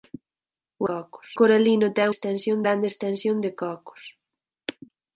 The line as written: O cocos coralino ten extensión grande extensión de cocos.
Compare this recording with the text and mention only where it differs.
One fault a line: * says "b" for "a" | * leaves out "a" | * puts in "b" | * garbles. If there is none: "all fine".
all fine